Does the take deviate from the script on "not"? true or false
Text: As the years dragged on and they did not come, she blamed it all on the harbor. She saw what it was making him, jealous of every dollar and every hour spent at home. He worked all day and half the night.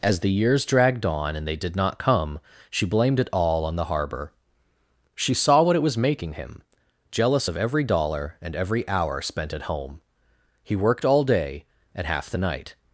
false